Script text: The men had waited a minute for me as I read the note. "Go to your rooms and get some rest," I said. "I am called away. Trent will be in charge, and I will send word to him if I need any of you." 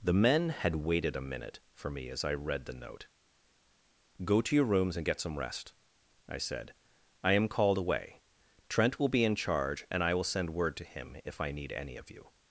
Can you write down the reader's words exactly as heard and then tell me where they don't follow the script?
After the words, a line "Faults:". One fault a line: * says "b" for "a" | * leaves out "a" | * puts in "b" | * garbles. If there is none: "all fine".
The men had waited a minute for me as I read the note. "Go to your rooms and get some rest," I said. "I am called away. Trent will be in charge, and I will send word to him if I need any of you."
Faults:
all fine